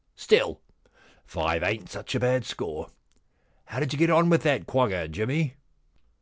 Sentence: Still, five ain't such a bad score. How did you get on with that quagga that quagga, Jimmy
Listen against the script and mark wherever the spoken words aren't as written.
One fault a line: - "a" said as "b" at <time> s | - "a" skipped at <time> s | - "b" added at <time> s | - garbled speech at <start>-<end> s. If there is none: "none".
- "that quagga" skipped at 5.1 s